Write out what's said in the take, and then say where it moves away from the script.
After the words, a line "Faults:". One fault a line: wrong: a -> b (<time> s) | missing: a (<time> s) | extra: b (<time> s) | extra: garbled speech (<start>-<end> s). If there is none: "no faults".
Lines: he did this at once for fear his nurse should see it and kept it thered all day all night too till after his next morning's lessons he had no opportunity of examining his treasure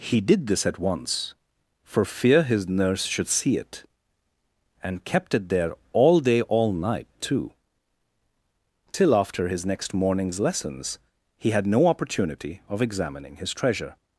he did this at once for fear his nurse should see it and kept it there all day all night too till after his next morning's lessons he had no opportunity of examining his treasure
Faults:
wrong: thered -> there (5.5 s)